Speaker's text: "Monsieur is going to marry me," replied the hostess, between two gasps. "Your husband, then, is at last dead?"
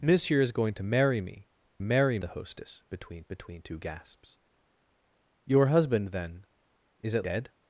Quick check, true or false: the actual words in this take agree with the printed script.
false